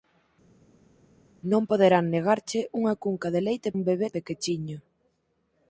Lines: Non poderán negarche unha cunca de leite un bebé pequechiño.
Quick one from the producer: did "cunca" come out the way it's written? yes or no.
yes